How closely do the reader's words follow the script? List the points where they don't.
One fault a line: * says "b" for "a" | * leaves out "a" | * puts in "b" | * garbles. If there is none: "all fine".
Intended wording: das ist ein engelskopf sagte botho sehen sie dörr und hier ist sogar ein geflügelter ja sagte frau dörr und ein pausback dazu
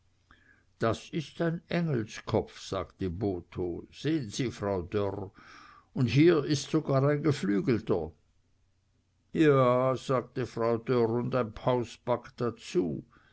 * puts in "frau"